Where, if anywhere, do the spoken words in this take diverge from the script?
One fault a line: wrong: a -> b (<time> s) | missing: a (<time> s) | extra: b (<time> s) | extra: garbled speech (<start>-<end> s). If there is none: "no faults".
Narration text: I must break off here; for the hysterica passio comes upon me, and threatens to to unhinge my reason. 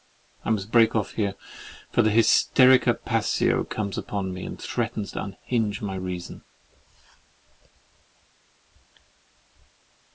missing: to (5.2 s)